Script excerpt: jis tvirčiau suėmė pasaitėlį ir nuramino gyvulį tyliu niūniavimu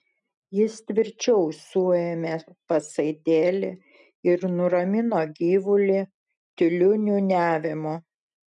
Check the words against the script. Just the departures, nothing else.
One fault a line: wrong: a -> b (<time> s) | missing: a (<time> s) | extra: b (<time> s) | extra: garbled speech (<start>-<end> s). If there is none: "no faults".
no faults